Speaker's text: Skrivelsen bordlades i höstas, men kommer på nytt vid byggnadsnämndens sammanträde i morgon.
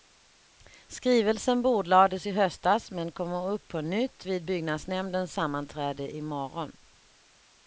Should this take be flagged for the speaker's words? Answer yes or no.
yes